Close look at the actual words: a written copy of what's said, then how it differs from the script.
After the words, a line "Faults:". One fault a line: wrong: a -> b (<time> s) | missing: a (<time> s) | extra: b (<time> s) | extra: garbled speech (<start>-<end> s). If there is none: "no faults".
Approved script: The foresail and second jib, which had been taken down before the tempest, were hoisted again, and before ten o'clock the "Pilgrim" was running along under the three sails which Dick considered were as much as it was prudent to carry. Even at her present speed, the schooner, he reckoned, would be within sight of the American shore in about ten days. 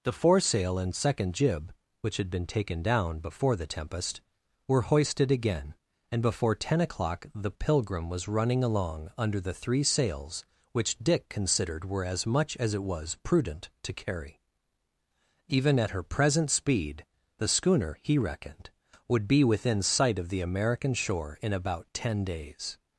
The foresail and second jib, which had been taken down before the tempest, were hoisted again, and before ten o'clock the "Pilgrim" was running along under the three sails which Dick considered were as much as it was prudent to carry. Even at her present speed, the schooner, he reckoned, would be within sight of the American shore in about ten days.
Faults:
no faults